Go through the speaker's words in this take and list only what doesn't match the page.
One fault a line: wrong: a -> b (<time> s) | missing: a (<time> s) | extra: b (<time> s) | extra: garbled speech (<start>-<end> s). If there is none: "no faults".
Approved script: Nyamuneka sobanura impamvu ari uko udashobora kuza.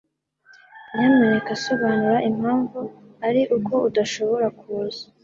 no faults